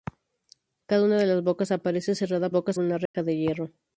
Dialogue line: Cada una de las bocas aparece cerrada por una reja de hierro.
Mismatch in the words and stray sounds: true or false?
true